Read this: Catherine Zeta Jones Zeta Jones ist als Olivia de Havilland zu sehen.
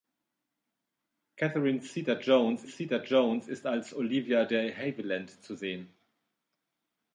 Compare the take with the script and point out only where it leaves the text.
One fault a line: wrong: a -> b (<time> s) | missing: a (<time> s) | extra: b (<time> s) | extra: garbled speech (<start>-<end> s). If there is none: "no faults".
no faults